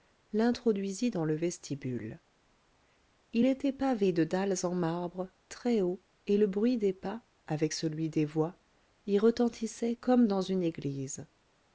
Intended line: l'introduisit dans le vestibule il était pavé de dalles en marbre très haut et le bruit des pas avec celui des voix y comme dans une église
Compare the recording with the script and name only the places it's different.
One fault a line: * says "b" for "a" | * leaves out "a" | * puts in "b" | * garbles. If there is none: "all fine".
* puts in "retentissait"